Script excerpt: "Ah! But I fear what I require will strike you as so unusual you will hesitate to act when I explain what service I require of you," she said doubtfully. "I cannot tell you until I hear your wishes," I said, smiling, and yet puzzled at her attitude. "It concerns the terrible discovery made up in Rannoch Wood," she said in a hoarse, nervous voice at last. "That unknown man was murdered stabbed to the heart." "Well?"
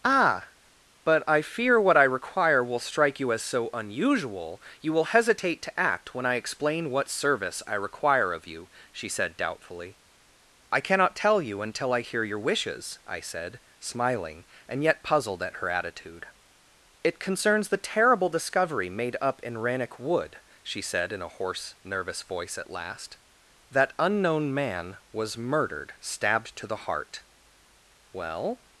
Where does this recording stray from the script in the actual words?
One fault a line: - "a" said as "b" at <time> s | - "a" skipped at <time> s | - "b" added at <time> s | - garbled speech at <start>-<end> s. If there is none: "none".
none